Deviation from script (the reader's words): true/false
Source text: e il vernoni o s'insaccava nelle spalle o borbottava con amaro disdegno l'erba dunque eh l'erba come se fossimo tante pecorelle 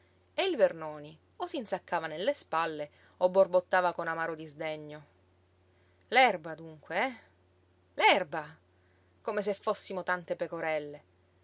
false